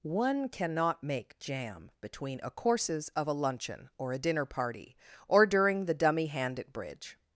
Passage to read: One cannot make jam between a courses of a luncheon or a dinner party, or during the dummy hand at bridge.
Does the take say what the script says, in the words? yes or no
yes